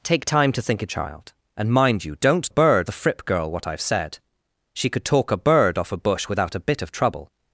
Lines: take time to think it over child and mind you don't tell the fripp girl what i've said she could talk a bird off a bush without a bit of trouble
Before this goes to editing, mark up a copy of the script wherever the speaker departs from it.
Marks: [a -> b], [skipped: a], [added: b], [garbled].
take time to think it [skipped: over] child and mind you don't [tell -> bird] the fripp girl what i've said she could talk a bird off a bush without a bit of trouble